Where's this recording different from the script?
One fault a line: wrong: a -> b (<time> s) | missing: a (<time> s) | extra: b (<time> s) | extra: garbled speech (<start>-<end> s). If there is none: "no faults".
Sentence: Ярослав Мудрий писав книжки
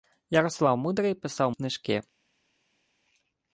no faults